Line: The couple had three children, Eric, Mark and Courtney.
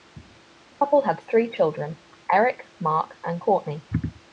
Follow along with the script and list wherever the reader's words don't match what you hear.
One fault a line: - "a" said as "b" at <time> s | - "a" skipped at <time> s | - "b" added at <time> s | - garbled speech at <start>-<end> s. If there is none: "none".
none